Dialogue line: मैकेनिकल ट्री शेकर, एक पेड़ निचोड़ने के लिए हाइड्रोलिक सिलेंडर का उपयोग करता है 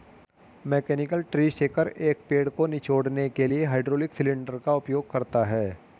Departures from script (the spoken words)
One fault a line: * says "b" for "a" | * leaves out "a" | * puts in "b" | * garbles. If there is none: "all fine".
* puts in "को"